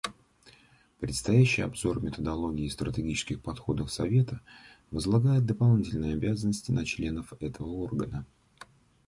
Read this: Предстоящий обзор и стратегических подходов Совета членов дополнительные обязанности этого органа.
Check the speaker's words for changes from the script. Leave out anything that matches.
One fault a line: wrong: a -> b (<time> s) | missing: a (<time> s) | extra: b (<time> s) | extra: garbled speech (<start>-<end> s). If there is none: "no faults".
extra: методологии (2.0 s)
wrong: членов -> возлагает (4.9 s)
extra: на членов (6.7 s)